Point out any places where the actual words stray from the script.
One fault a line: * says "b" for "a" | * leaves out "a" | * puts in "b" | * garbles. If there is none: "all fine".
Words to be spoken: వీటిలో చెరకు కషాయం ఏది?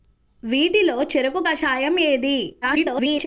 * garbles